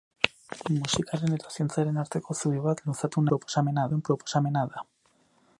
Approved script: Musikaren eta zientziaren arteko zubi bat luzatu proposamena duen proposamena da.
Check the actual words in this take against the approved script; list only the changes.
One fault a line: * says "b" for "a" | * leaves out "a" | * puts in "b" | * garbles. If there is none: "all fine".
all fine